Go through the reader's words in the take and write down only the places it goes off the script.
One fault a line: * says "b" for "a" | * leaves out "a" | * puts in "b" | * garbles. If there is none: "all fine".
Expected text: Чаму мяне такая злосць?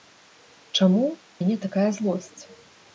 all fine